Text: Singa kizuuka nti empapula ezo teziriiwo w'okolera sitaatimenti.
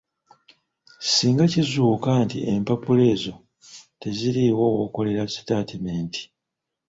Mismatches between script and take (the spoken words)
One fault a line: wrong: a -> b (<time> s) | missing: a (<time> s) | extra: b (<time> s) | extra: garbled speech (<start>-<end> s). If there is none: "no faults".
no faults